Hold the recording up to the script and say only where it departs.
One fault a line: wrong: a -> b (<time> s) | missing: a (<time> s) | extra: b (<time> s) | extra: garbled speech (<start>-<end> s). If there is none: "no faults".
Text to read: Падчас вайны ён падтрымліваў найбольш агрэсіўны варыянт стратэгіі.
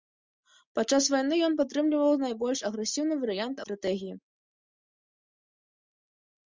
no faults